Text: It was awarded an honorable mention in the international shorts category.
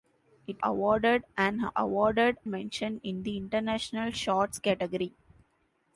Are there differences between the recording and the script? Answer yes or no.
yes